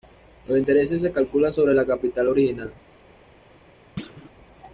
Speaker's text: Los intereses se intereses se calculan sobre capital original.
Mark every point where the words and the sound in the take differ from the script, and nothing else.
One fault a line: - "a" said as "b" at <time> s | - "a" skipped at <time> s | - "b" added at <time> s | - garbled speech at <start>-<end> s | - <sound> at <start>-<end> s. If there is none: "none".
- "intereses se" skipped at 1.1 s
- "el" added at 1.7 s
- thud at 4.0-4.3 s